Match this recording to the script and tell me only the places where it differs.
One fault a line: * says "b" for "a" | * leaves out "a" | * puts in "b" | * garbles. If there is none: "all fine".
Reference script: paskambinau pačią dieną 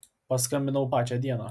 all fine